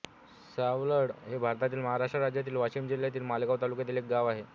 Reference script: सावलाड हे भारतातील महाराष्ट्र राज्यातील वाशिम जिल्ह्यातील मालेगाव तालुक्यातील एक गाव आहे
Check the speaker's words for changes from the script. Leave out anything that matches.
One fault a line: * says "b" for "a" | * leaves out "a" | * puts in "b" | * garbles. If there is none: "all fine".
all fine